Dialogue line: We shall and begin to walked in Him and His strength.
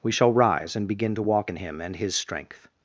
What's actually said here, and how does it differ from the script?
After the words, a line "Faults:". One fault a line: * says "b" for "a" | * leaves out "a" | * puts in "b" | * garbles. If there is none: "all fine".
We shall rise and begin to walk in Him and His strength.
Faults:
* puts in "rise"
* says "walk" for "walked"